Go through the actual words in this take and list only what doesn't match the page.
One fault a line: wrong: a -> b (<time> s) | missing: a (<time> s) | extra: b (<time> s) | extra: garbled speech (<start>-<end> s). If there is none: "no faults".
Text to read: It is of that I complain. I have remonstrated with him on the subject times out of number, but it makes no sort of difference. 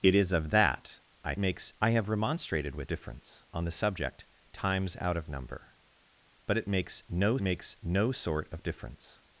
wrong: complain -> makes (1.4 s)
wrong: him -> difference (2.9 s)
extra: makes no (7.4 s)